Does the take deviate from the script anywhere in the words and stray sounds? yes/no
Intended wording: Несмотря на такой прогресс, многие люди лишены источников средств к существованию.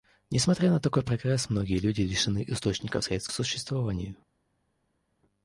no